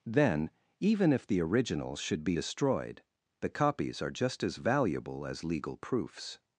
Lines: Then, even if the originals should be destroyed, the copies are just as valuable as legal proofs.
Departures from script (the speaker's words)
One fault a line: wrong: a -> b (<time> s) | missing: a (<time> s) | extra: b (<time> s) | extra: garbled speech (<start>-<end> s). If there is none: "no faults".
no faults